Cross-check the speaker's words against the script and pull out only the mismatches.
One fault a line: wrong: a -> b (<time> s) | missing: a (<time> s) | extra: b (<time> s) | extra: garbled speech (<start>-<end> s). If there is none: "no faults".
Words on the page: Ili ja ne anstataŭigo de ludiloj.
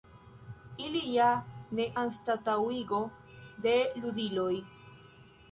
no faults